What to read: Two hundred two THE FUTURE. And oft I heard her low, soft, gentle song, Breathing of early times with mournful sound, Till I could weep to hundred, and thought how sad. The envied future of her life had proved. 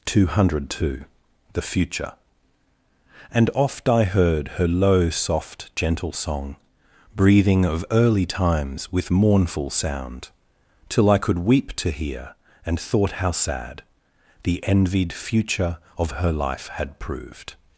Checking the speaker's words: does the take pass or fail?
fail